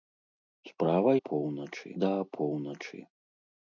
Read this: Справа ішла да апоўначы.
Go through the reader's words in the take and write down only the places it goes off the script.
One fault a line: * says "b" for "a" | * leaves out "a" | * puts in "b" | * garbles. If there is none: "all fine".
* says "апоўначы" for "ішла"